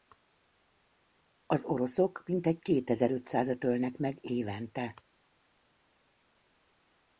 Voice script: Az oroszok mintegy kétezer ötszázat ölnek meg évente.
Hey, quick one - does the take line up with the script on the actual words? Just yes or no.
yes